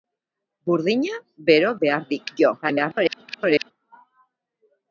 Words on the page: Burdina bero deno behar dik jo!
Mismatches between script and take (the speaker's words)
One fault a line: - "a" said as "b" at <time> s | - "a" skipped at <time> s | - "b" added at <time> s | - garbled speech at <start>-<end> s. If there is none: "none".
- "deno" skipped at 1.7 s
- garbled speech at 2.6-3.7 s